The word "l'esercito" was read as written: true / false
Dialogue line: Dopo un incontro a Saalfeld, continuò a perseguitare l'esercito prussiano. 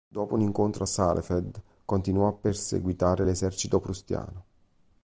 true